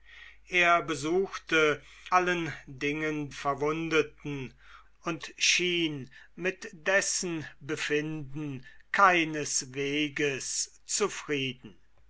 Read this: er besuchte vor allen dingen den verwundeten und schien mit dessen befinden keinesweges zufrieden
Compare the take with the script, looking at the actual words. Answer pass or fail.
fail